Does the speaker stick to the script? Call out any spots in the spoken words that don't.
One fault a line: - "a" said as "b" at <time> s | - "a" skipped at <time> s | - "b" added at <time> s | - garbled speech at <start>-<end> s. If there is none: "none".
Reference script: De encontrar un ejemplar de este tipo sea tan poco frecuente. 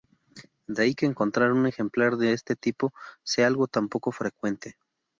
- "ahí que" added at 0.8 s
- "algo" added at 3.5 s